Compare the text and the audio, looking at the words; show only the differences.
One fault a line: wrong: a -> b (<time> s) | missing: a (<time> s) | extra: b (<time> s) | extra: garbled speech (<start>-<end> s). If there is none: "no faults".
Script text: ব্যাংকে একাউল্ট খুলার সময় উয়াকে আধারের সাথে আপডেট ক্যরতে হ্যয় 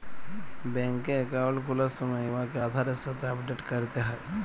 no faults